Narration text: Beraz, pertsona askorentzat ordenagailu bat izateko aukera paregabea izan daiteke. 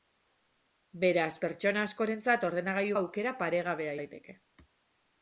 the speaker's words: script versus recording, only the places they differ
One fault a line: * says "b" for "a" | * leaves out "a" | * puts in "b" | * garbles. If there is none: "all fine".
* leaves out "bat izateko"
* leaves out "izan"